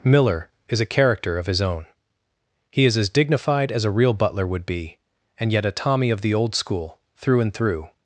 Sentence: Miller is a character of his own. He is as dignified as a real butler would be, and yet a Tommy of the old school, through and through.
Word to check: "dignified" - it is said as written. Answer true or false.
true